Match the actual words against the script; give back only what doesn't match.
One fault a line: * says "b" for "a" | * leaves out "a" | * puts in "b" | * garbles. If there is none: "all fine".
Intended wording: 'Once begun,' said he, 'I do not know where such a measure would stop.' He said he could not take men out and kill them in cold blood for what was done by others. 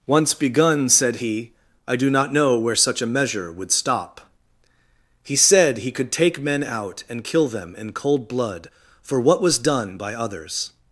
* leaves out "not"